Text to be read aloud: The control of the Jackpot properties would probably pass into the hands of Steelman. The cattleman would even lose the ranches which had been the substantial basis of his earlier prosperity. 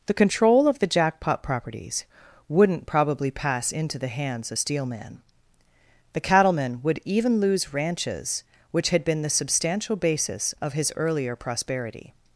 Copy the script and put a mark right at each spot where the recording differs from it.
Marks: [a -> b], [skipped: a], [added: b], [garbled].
The control of the Jackpot properties [would -> wouldn't] probably pass into the hands of Steelman. The cattleman would even lose [skipped: the] ranches which had been the substantial basis of his earlier prosperity.